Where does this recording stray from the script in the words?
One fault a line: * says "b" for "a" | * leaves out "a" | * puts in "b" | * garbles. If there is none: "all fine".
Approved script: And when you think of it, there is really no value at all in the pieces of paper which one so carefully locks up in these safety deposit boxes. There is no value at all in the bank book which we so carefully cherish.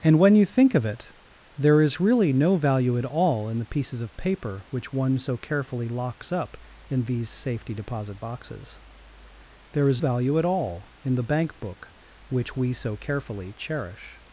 * leaves out "no"